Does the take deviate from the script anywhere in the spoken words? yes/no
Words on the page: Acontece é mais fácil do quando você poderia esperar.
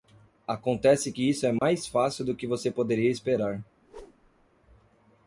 yes